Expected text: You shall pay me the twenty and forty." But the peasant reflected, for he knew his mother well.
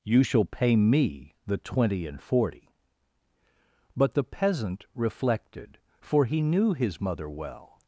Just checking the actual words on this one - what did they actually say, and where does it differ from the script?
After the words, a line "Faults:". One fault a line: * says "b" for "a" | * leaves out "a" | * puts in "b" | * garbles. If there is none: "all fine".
You shall pay me the twenty and forty." But the peasant reflected, for he knew his mother well.
Faults:
all fine